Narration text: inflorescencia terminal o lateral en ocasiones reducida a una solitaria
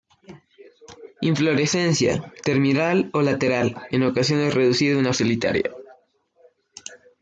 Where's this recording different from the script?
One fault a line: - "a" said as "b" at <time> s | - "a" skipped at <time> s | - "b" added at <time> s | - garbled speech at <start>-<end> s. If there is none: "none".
none